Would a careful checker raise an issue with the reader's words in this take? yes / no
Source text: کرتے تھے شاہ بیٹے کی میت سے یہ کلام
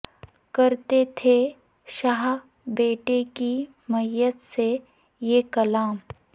no